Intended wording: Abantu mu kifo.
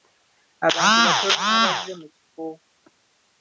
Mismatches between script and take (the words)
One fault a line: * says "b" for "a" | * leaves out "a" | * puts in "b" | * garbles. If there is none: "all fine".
* puts in "batono abazze"